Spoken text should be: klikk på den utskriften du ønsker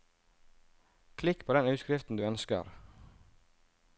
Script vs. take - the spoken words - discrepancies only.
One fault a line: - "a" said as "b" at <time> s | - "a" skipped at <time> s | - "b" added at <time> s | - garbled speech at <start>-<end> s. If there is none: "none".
none